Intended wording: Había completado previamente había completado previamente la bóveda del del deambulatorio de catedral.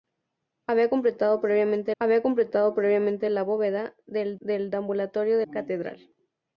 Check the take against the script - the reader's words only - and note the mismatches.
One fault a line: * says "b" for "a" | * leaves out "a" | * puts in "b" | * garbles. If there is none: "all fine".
all fine